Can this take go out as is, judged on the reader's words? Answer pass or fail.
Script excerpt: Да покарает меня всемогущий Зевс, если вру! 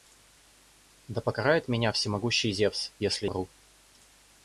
pass